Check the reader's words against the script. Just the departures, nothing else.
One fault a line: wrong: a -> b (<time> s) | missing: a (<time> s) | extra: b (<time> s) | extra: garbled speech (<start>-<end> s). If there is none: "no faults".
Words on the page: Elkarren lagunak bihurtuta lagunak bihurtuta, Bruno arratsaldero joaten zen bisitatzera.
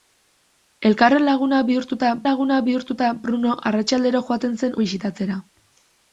no faults